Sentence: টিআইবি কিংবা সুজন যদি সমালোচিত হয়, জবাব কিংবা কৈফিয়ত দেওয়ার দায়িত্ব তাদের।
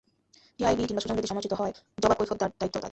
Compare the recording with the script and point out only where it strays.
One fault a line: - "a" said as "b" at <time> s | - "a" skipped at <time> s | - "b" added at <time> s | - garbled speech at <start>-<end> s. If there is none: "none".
- "কিংবা" skipped at 2.2 s